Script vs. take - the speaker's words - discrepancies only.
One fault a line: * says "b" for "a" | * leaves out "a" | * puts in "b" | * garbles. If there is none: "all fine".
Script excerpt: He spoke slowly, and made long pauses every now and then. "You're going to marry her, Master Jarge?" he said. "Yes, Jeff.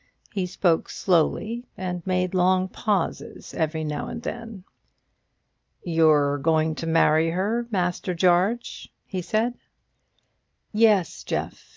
all fine